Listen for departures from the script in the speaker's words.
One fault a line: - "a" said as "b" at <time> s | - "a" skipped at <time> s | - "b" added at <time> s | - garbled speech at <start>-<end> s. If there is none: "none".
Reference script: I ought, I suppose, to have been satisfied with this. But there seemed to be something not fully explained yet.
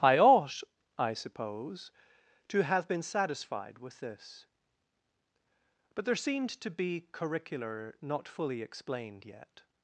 - "something" said as "curricular" at 7.1 s